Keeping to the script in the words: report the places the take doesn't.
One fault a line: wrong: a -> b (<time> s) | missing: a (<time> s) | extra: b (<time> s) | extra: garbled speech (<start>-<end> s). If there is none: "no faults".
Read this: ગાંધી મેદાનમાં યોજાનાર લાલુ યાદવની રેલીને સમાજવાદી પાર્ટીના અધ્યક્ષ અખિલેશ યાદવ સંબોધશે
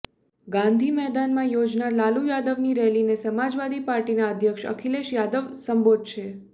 no faults